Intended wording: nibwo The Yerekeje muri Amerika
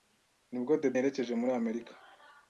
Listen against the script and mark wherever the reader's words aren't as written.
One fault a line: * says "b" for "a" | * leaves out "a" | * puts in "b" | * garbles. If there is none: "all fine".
all fine